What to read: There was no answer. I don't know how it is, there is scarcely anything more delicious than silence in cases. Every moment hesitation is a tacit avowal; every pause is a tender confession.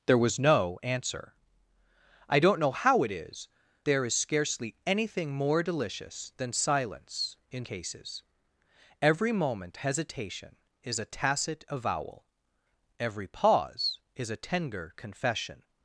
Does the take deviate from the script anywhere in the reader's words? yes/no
no